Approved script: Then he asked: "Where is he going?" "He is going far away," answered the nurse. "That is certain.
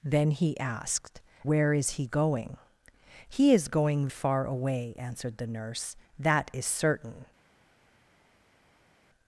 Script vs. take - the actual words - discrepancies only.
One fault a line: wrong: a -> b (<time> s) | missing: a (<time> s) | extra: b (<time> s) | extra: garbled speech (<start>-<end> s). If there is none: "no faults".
no faults